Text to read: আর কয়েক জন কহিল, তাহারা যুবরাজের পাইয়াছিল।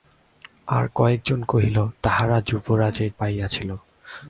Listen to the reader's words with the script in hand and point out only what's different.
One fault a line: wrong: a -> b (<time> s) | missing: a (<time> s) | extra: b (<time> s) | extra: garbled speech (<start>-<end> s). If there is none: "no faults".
no faults